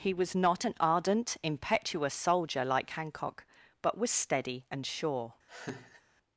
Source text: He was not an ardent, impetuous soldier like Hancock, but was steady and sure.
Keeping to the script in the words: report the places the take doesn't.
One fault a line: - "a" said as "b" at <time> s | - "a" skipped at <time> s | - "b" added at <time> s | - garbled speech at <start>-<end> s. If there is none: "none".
none